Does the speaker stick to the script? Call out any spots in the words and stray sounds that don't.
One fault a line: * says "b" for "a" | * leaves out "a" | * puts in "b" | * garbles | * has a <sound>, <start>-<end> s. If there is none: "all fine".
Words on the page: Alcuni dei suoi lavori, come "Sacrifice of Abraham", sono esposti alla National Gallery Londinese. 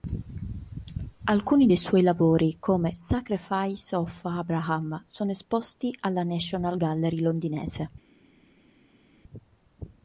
all fine